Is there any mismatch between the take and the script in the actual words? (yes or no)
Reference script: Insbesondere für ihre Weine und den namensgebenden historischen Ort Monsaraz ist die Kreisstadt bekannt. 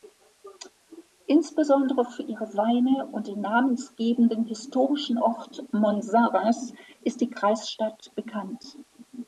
no